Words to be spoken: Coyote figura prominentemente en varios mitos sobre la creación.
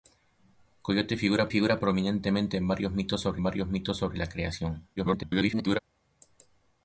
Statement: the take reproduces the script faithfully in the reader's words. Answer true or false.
false